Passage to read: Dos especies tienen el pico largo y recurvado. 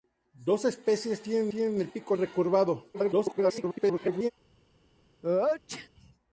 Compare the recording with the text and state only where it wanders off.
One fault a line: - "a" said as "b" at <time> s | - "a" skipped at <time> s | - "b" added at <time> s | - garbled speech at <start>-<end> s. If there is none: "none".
- "tienen" added at 1.5 s
- "largo" skipped at 2.2 s
- garbled speech at 2.9-4.3 s